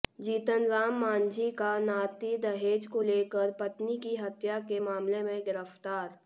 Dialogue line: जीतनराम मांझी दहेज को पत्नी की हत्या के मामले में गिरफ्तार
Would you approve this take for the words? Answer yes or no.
no